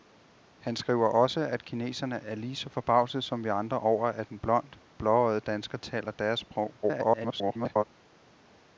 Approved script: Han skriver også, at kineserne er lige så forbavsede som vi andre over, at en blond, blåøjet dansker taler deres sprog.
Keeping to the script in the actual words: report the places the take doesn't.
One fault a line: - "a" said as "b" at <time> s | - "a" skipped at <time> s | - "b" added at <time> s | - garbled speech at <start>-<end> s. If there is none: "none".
- garbled speech at 6.8-7.8 s